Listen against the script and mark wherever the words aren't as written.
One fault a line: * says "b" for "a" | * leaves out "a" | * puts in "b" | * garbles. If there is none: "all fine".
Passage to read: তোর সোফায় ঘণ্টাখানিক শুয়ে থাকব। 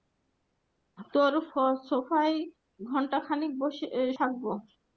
* leaves out "শুয়ে"